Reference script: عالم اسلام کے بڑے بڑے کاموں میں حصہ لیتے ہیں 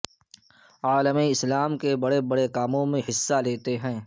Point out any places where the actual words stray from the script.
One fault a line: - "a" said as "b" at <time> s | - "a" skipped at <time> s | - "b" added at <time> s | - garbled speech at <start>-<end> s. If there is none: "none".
none